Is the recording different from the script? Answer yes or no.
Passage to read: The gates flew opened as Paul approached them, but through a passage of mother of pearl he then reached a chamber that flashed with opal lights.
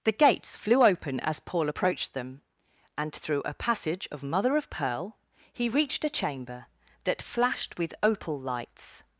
yes